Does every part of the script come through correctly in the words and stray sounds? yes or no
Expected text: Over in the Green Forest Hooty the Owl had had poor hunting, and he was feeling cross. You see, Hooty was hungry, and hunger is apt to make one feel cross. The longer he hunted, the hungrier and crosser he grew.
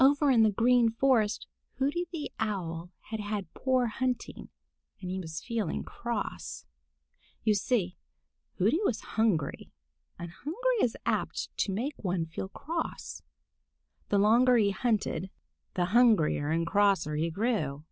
yes